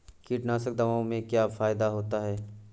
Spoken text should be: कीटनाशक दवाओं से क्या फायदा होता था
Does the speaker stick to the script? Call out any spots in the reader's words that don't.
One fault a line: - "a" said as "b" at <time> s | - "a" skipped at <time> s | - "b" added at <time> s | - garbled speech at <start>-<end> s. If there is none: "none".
- "था" said as "है" at 2.2 s